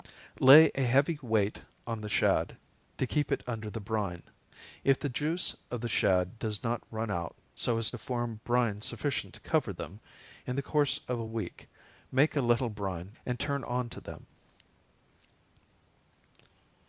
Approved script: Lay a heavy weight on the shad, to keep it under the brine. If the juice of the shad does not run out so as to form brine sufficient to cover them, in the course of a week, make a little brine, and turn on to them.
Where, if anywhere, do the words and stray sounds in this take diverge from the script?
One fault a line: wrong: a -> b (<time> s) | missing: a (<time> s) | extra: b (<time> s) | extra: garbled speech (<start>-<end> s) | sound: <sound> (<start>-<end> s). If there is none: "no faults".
no faults